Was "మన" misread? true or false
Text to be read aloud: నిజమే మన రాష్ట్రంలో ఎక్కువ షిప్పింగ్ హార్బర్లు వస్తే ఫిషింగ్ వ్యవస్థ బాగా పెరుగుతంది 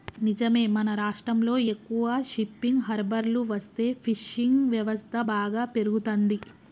false